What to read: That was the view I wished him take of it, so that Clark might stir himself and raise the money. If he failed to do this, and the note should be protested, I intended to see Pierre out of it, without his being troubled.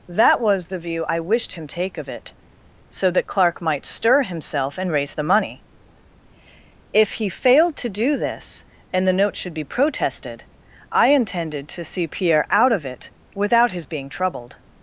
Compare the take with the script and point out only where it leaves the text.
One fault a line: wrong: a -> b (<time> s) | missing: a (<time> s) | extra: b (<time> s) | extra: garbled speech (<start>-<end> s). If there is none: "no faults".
no faults